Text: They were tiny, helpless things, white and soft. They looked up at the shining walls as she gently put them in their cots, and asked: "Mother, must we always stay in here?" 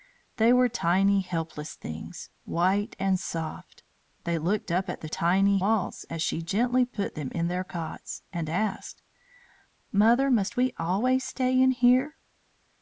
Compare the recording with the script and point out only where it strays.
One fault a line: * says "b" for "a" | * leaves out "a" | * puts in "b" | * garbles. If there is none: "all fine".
* says "tiny" for "shining"